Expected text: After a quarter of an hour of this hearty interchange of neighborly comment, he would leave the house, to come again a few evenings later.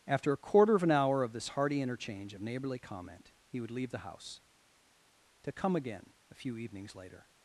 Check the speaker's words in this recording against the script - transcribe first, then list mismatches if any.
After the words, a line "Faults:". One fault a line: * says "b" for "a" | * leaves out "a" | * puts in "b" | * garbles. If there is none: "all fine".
After a quarter of an hour of this hearty interchange of neighborly comment, he would leave the house, to come again a few evenings later.
Faults:
all fine